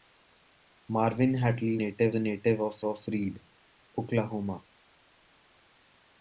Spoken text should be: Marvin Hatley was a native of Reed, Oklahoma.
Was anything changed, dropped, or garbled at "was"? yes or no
yes